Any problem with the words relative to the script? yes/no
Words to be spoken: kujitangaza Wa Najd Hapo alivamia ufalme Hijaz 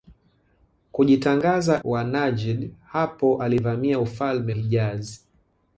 no